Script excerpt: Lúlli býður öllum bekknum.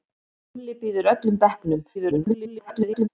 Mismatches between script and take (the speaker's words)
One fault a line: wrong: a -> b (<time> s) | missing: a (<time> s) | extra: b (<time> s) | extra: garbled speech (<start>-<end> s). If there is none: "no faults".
extra: garbled speech (1.9-3.1 s)